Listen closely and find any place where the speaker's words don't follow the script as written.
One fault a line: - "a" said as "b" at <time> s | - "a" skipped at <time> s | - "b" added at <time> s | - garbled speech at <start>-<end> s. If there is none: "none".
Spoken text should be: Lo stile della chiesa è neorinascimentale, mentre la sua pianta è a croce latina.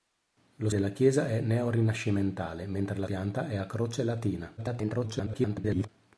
- "stile" skipped at 0.7 s
- "sua" skipped at 3.1 s
- garbled speech at 4.6-5.9 s